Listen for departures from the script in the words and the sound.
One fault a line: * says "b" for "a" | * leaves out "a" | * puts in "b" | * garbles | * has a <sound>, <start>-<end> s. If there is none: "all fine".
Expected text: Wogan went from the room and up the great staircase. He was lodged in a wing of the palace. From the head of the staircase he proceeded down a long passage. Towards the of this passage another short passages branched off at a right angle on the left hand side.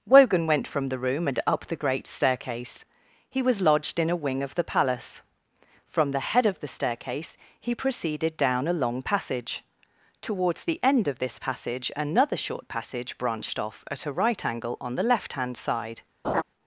* puts in "end"
* says "passage" for "passages"
* has a laugh, 16.2-16.4 s